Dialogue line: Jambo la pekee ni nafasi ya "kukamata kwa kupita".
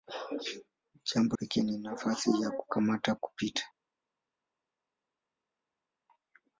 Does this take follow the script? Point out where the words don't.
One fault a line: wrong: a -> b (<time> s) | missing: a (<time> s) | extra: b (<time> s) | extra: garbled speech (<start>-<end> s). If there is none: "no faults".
missing: la (1.4 s)
missing: kwa (3.2 s)